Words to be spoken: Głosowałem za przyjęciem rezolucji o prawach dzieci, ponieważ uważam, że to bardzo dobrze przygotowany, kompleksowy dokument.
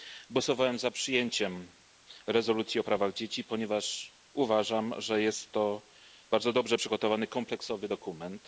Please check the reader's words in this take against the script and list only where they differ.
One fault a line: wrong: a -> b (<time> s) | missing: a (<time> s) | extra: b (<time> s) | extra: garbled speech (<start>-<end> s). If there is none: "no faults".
extra: jest (5.2 s)